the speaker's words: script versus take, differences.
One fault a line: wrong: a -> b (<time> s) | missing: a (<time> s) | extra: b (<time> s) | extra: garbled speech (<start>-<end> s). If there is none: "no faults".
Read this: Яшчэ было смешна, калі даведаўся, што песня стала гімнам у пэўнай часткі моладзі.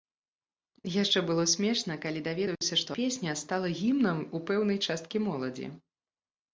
no faults